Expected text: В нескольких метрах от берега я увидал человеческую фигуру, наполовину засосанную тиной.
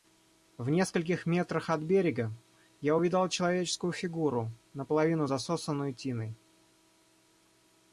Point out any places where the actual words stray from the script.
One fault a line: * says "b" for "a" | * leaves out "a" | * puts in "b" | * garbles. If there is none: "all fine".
all fine